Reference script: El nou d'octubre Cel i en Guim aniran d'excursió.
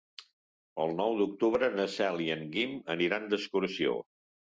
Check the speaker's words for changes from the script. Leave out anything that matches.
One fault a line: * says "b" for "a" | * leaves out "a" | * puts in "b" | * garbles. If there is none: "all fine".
* puts in "na"